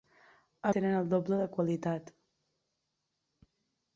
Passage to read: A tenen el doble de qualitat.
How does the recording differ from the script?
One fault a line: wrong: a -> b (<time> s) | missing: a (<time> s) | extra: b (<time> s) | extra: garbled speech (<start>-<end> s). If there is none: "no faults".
no faults